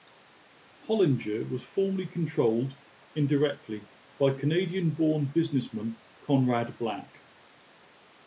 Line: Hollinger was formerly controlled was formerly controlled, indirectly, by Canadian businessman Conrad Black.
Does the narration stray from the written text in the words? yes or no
yes